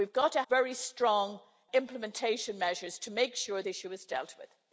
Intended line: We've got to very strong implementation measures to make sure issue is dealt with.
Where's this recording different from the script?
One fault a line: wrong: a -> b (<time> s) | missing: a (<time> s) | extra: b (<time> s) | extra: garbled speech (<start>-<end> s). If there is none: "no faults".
no faults